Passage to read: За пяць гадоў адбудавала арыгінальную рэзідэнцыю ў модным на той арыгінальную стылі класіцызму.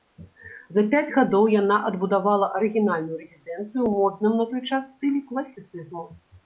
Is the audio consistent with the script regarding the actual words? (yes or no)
no